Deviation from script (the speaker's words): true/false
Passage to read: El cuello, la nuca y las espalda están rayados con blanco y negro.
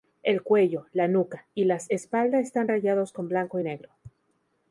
false